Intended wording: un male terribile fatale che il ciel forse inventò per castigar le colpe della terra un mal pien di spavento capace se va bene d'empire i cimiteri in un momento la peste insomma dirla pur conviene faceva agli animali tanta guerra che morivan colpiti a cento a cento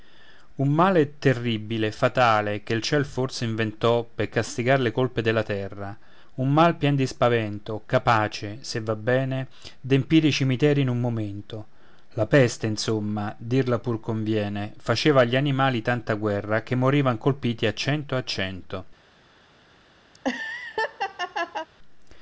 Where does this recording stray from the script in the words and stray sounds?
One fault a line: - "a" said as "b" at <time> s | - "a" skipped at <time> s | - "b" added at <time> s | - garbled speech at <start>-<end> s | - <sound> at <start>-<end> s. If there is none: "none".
- laugh at 20.1-21.7 s